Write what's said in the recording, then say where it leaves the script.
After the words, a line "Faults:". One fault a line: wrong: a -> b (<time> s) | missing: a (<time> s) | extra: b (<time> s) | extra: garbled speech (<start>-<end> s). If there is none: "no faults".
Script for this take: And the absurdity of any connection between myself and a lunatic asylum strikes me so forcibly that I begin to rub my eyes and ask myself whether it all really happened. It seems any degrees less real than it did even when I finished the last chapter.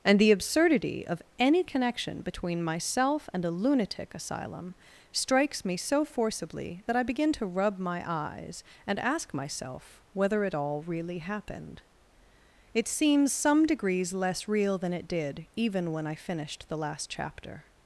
And the absurdity of any connection between myself and a lunatic asylum strikes me so forcibly that I begin to rub my eyes and ask myself whether it all really happened. It seems some degrees less real than it did even when I finished the last chapter.
Faults:
wrong: any -> some (13.3 s)